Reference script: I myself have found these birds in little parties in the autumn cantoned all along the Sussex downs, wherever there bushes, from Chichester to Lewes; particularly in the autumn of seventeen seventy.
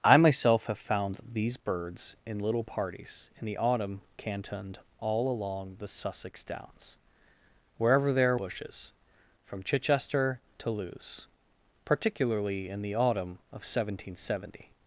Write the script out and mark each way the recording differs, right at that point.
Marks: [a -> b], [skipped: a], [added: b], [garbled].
I myself have found these birds in little parties in the autumn cantoned all along the Sussex downs, wherever there bushes, from Chichester to Lewes; particularly in the autumn of seventeen seventy.